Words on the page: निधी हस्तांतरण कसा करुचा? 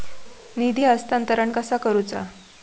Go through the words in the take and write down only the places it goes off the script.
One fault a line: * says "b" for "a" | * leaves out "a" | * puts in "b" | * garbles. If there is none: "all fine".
all fine